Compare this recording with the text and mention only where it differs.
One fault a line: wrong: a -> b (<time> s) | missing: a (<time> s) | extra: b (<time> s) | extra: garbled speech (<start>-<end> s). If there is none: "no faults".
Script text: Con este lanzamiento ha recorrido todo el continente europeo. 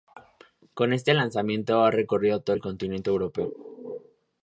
no faults